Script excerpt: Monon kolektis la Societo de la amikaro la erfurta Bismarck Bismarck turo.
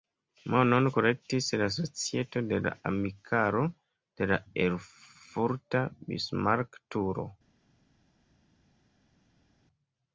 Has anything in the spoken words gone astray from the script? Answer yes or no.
yes